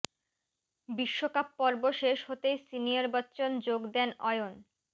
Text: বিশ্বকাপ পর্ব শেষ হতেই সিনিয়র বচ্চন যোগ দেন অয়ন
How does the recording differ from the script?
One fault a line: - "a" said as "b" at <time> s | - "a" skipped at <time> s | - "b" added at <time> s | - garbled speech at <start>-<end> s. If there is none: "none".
none